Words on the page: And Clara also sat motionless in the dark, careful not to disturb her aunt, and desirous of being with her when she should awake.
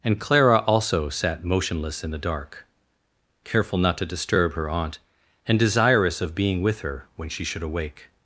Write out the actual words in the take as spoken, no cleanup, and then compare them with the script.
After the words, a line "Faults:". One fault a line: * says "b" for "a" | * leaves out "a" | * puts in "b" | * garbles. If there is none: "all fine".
And Clara also sat motionless in the dark, careful not to disturb her aunt, and desirous of being with her when she should awake.
Faults:
all fine